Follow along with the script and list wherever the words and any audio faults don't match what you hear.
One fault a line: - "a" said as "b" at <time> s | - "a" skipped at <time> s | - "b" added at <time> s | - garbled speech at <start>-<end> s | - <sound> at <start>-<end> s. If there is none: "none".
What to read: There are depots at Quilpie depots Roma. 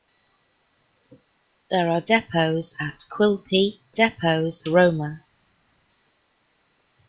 none